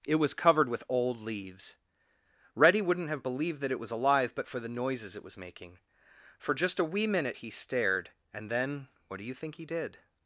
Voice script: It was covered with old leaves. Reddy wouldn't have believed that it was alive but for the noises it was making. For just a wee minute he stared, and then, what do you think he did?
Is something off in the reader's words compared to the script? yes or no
no